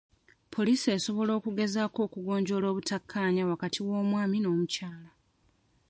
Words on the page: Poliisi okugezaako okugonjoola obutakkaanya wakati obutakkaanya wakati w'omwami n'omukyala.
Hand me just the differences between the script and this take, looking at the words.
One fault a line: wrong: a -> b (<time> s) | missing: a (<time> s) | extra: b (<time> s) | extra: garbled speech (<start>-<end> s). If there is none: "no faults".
extra: esobola (1.0 s)
missing: obutakkaanya wakati (3.8 s)